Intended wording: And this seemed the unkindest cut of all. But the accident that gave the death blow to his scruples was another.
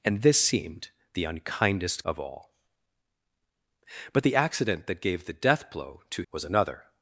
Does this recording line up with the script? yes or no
no